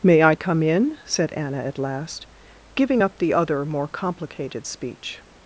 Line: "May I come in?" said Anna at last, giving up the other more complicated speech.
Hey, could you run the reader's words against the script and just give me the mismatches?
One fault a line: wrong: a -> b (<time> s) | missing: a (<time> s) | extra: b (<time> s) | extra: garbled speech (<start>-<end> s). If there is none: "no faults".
no faults